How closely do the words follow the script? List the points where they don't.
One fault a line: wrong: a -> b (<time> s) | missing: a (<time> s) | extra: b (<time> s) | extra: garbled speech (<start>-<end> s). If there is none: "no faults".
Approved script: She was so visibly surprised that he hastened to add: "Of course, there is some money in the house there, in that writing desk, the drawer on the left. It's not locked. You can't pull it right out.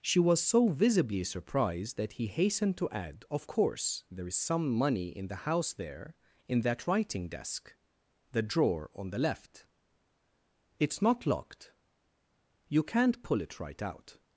no faults